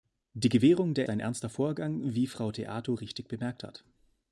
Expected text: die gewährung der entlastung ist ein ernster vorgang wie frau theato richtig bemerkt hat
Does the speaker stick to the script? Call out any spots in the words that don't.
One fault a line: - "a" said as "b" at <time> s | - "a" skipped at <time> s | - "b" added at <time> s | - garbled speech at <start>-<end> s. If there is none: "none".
- "entlastung ist" skipped at 1.1 s